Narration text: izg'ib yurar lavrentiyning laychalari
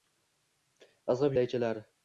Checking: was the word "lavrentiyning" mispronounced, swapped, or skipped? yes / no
yes